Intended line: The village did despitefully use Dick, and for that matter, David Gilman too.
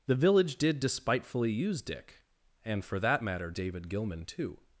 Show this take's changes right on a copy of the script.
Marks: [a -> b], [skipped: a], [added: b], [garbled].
The village did despitefully use Dick, and for that matter, David Gilman too.